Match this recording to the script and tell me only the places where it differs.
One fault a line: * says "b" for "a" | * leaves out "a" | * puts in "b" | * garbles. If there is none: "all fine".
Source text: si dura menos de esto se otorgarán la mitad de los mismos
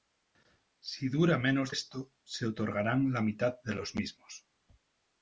* leaves out "de"